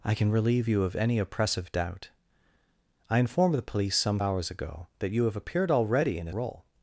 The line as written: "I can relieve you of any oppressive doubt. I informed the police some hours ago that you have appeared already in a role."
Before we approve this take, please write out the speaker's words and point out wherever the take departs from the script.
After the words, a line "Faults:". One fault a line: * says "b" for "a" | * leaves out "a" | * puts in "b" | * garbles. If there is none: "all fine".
"I can relieve you of any oppressive doubt. I informed the police some hours ago that you have appeared already in a role."
Faults:
all fine